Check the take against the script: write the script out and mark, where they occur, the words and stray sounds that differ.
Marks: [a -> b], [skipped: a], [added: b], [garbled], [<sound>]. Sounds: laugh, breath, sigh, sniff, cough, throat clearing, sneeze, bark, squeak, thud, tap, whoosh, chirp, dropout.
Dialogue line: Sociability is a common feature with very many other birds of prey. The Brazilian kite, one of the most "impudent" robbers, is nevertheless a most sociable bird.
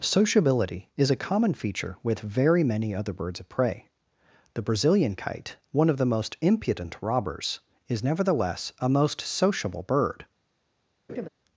Sociability is a common feature with very many other birds of prey. The Brazilian kite, one of the most "impudent" robbers, is nevertheless a most sociable bird. [laugh]